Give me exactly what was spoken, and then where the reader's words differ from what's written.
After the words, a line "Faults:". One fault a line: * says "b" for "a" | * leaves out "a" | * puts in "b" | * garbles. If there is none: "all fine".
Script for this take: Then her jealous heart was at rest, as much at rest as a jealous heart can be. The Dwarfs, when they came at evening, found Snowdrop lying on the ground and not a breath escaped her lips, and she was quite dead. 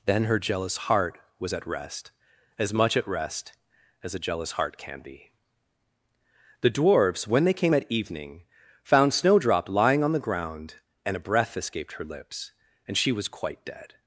Then her jealous heart was at rest, as much at rest as a jealous heart can be. The Dwarfs, when they came at evening, found Snowdrop lying on the ground and a breath escaped her lips, and she was quite dead.
Faults:
* leaves out "not"